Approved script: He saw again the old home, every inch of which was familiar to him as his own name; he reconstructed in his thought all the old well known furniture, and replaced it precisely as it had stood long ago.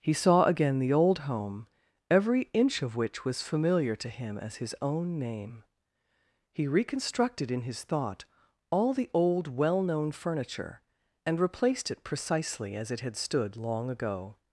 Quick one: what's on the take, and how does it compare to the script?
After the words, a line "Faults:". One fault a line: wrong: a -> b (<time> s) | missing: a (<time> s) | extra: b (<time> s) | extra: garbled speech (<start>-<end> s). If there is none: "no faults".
He saw again the old home, every inch of which was familiar to him as his own name; he reconstructed in his thought all the old well known furniture, and replaced it precisely as it had stood long ago.
Faults:
no faults